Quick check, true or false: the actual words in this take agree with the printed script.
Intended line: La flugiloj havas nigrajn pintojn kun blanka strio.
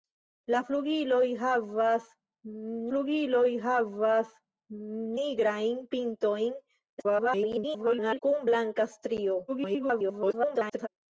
false